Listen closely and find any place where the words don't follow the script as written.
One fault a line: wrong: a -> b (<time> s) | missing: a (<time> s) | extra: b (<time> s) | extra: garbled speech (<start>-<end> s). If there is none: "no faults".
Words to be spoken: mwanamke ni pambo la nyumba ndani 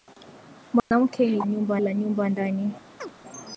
wrong: pambo -> nyumba (1.5 s)